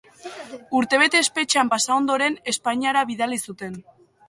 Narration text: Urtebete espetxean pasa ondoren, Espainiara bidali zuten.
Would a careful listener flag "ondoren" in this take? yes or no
no